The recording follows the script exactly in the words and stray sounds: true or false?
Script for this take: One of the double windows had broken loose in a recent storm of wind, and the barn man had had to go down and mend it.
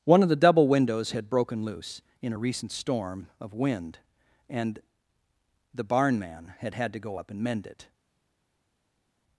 false